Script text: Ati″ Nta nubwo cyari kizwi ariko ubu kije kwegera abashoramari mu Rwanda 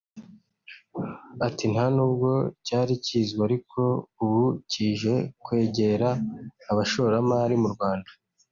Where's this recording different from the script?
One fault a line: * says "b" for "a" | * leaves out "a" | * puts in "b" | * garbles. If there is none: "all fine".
all fine